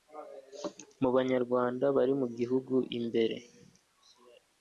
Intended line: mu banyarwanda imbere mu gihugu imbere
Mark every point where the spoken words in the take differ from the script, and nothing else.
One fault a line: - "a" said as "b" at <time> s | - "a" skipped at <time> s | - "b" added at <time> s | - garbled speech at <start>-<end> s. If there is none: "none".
- "imbere" said as "bari" at 1.9 s